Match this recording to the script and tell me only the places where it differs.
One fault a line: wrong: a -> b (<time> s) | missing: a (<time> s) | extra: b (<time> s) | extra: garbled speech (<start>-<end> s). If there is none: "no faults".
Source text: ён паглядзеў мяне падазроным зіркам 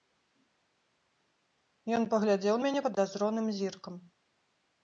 no faults